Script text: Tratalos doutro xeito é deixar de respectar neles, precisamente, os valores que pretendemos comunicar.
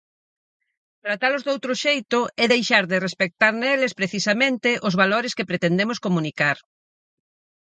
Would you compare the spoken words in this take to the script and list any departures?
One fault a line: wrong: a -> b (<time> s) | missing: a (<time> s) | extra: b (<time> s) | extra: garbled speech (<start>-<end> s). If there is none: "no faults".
no faults